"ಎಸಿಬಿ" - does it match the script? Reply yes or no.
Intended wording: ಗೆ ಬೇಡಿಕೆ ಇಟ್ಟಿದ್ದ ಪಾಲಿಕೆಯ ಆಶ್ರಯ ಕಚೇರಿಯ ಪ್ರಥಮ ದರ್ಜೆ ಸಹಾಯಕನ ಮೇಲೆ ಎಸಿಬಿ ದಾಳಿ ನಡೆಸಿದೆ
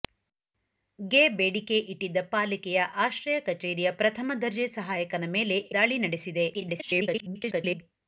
no